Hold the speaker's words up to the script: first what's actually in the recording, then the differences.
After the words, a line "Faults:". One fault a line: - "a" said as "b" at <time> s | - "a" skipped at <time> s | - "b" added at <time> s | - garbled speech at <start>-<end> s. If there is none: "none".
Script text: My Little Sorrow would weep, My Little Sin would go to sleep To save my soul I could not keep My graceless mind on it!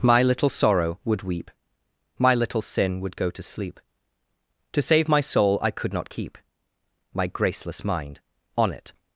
My Little Sorrow would weep, My Little Sin would go to sleep To save my soul I could not keep My graceless mind on it!
Faults:
none